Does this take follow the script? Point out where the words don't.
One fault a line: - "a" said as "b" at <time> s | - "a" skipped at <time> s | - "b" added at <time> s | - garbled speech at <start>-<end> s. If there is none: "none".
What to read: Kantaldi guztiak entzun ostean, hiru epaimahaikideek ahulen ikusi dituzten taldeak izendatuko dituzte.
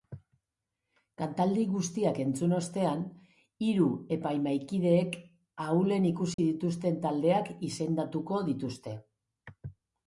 none